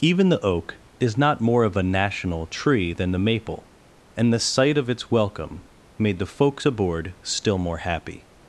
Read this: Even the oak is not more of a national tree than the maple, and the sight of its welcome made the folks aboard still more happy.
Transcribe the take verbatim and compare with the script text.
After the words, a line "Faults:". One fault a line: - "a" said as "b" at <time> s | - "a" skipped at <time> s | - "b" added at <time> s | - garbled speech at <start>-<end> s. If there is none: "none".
Even the oak is not more of a national tree than the maple, and the sight of its welcome made the folks aboard still more happy.
Faults:
none